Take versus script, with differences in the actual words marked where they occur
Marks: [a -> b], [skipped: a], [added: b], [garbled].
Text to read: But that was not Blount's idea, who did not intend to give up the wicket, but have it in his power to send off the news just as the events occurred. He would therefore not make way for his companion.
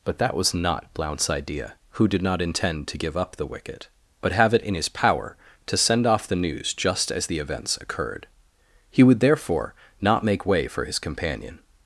But that was not Blount's idea, who did not intend to give up the wicket, but have it in his power to send off the news just as the events occurred. He would therefore not make way for his companion.